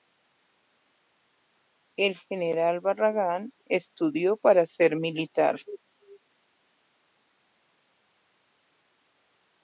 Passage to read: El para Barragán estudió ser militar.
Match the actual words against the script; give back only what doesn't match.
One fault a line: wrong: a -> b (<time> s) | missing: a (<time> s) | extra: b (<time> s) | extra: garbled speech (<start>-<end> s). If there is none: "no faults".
wrong: para -> general (2.2 s)
extra: para (4.3 s)